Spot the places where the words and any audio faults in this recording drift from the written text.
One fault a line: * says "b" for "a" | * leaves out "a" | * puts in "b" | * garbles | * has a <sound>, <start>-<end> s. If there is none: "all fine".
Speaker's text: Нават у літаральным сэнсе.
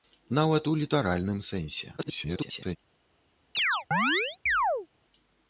* garbles
* has a chirp, 3.5-4.9 s